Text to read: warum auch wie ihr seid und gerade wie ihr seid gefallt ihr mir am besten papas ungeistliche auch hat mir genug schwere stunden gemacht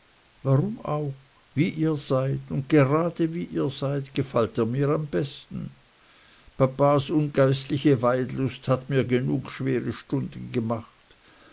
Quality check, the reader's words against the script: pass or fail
fail